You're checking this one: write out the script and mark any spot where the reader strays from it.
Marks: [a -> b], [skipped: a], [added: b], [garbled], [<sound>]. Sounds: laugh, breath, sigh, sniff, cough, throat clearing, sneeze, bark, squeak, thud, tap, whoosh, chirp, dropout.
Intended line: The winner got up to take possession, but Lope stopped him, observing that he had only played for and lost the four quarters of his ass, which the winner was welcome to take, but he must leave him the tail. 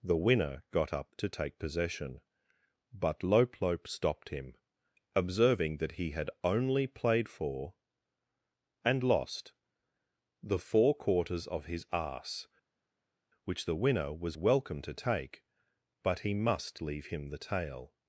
The winner got up to take possession, but Lope [added: Lope] stopped him, observing that he had only played for and lost the four quarters of his ass, which the winner was welcome to take, but he must leave him the tail.